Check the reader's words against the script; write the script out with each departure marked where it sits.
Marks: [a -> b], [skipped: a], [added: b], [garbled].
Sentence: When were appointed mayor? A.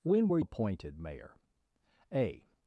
When were appointed mayor? A.